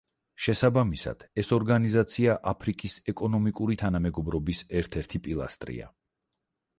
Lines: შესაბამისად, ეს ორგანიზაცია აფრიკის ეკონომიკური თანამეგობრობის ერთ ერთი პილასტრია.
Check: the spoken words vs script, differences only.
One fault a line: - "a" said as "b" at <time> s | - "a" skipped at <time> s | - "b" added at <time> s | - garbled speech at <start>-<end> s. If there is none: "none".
none